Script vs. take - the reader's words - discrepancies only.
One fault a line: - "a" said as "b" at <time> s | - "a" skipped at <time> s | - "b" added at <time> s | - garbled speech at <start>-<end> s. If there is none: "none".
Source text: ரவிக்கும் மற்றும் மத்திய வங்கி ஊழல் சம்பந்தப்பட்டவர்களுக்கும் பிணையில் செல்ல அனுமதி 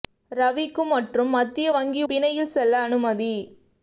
- "ஊழல் சம்பந்தப்பட்டவர்களுக்கும்" skipped at 2.0 s